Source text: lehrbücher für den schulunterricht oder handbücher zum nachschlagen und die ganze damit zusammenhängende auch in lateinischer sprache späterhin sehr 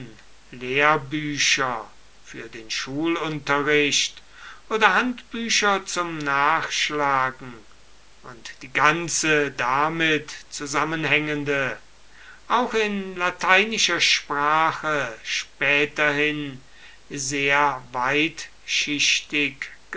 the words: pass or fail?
pass